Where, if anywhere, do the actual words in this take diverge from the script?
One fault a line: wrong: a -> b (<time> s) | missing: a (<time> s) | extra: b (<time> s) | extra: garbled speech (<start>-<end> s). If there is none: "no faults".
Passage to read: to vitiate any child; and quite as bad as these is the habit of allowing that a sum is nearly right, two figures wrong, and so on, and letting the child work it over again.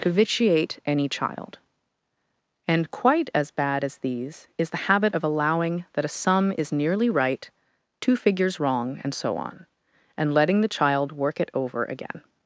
no faults